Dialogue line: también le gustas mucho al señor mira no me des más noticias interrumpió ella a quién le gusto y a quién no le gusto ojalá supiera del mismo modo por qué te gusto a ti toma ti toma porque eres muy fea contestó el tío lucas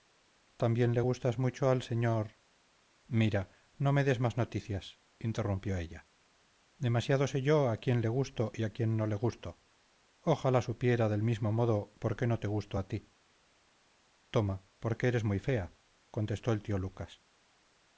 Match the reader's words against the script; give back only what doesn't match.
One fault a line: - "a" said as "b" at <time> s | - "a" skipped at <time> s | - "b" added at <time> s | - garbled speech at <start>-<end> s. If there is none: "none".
- "demasiado sé yo" added at 6.8 s
- "no" added at 12.3 s
- "ti toma" skipped at 14.6 s